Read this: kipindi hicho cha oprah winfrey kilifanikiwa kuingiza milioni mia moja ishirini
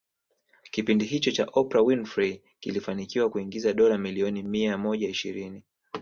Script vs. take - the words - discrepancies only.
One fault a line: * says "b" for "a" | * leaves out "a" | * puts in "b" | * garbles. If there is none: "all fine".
* puts in "dola"